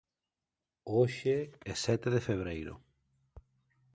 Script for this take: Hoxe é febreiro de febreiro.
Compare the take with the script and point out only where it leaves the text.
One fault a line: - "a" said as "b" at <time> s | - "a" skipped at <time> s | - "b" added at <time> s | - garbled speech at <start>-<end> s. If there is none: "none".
- "febreiro" said as "sete" at 1.9 s